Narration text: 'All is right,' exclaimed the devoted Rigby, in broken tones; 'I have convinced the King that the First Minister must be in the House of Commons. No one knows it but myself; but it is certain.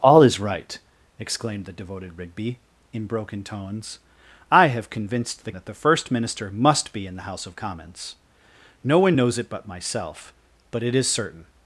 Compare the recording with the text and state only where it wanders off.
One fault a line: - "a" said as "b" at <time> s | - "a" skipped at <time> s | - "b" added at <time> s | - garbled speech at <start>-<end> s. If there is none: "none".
- "King" skipped at 5.5 s